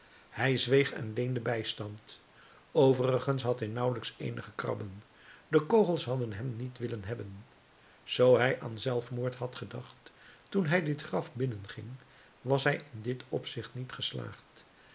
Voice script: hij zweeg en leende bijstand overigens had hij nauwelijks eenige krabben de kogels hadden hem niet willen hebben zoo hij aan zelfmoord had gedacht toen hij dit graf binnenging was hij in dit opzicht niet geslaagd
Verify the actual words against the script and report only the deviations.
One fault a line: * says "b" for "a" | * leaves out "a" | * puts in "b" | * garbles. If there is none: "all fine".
all fine